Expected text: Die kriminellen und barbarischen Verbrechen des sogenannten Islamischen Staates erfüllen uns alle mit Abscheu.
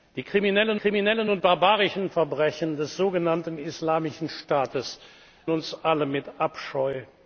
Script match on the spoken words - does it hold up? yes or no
no